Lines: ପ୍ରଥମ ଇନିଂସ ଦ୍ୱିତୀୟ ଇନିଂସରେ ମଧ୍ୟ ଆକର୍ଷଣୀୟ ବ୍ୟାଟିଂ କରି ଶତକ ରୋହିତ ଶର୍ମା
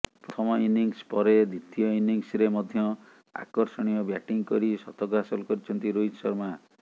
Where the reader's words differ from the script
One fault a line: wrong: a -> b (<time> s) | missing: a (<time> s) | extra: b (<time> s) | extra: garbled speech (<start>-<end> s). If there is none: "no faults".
extra: ପରେ (1.1 s)
extra: ହାସଲ କରିଛନ୍ତି (5.2 s)